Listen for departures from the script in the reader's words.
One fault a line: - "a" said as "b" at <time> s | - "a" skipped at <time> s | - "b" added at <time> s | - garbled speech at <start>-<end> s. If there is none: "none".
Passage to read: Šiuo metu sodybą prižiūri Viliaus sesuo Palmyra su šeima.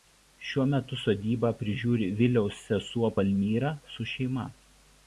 none